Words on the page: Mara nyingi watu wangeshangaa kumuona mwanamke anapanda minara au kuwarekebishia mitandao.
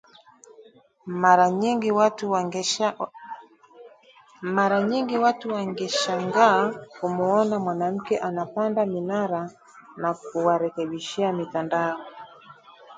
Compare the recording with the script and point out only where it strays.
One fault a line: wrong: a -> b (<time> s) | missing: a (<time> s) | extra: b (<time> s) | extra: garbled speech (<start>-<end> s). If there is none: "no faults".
wrong: au -> na (10.0 s)